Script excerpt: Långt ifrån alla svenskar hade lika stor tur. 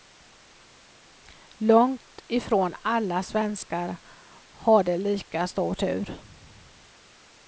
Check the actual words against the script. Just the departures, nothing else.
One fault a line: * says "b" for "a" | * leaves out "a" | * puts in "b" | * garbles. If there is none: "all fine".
all fine